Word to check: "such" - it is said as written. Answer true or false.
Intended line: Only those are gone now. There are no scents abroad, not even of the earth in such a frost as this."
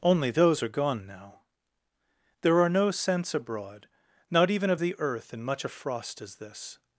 false